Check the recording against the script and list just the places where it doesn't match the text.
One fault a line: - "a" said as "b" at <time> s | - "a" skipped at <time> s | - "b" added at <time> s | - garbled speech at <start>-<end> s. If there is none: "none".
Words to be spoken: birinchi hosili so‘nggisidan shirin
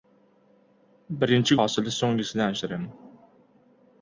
none